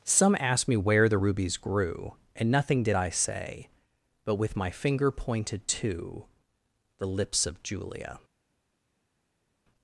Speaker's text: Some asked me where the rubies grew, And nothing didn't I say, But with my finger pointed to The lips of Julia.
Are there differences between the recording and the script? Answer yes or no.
yes